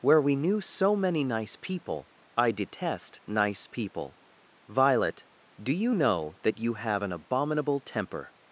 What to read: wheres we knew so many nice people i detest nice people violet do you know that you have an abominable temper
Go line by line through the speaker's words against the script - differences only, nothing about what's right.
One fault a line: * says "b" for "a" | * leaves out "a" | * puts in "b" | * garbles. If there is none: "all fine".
* says "where" for "wheres"